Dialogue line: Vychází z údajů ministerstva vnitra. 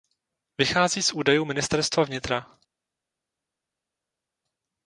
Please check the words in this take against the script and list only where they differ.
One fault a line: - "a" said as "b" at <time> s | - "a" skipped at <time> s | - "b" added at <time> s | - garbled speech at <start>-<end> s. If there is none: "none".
none